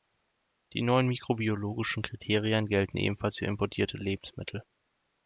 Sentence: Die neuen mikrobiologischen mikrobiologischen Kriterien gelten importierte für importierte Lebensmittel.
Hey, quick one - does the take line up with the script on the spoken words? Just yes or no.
no